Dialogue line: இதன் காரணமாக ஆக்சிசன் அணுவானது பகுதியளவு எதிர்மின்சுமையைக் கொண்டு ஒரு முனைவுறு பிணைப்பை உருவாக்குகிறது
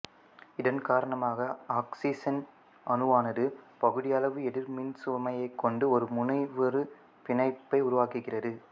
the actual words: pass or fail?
pass